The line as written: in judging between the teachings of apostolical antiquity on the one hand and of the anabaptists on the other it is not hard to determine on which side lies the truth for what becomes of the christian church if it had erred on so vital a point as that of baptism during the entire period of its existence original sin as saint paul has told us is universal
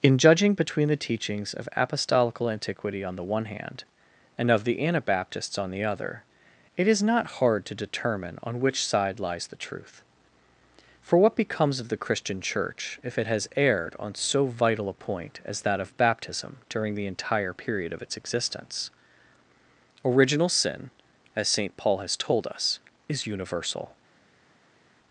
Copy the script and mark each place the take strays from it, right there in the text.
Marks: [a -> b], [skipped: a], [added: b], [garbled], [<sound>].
in judging between the teachings of apostolical antiquity on the one hand and of the anabaptists on the other it is not hard to determine on which side lies the truth for what becomes of the christian church if it [had -> has] erred on so vital a point as that of baptism during the entire period of its existence original sin as saint paul has told us is universal